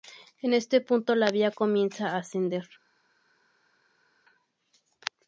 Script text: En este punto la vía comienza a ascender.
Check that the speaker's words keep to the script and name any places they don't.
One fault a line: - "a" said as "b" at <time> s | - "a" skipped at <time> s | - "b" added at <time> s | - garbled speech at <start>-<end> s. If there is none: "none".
none